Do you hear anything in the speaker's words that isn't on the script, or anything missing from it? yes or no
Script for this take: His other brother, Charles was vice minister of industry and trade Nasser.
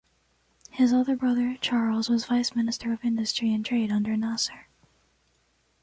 yes